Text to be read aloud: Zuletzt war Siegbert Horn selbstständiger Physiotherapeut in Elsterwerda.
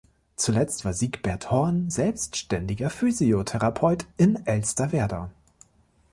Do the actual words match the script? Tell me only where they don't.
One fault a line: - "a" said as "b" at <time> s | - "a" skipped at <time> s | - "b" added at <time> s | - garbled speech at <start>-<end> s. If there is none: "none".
none